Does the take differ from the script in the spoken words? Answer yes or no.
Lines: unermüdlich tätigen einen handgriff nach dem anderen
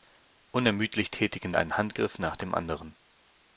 no